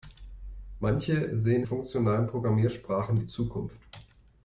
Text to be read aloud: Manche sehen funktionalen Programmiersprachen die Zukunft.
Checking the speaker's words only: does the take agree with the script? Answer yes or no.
yes